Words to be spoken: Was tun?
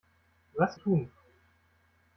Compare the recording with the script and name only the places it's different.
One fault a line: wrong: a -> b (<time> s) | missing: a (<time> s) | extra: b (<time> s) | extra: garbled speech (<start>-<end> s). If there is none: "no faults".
no faults